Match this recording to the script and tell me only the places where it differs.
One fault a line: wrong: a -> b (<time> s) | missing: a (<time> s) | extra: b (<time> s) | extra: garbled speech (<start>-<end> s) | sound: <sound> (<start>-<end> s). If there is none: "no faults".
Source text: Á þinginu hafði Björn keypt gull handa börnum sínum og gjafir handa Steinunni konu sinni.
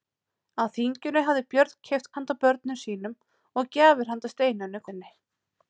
missing: gull (2.1 s)
missing: konu (4.9 s)